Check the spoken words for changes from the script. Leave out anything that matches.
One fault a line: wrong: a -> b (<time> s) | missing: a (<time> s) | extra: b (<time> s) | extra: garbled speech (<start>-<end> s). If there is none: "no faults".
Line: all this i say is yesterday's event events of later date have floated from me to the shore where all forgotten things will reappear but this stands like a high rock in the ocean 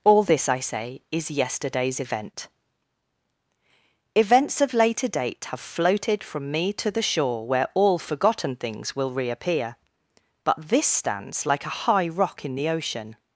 no faults